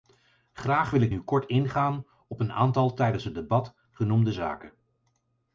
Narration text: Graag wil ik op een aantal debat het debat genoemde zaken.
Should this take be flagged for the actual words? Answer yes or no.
yes